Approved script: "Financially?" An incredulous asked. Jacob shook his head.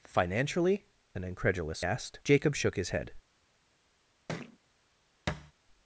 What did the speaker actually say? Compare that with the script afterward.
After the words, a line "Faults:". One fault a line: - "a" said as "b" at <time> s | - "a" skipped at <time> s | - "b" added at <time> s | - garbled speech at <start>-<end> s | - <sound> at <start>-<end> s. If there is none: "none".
"Financially?" An incredulous asked. Jacob shook his head.
Faults:
- thud at 4.3-4.6 s
- thud at 5.3-5.5 s